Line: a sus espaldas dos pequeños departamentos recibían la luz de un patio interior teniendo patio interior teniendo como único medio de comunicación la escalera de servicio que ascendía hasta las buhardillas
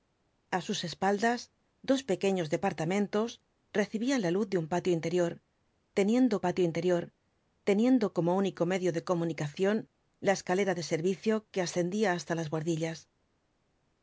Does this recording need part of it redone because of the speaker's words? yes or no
no